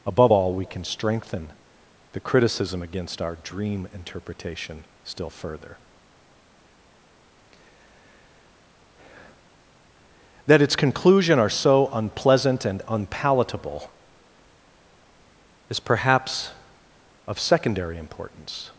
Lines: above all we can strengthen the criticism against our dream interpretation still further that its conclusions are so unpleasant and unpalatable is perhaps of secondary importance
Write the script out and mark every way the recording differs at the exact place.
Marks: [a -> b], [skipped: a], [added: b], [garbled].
above all we can strengthen the criticism against our dream interpretation still further that its [conclusions -> conclusion] are so unpleasant and unpalatable is perhaps of secondary importance